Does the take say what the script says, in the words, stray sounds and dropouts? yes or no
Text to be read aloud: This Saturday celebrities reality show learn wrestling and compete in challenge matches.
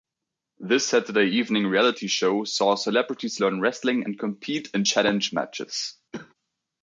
no